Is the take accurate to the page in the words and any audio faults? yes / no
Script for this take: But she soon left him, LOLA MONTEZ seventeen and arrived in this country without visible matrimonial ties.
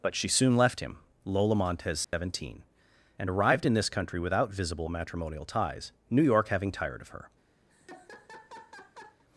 no